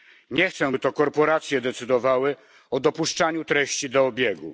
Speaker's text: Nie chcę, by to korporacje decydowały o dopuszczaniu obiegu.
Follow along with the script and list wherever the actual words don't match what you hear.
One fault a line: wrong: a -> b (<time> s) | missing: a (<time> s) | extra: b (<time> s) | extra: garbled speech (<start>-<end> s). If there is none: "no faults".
extra: treści do (3.4 s)